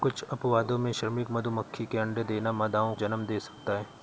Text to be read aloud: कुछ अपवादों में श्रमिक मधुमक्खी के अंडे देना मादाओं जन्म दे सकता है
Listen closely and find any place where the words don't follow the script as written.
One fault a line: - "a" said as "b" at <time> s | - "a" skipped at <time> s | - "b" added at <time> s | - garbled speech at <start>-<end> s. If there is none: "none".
none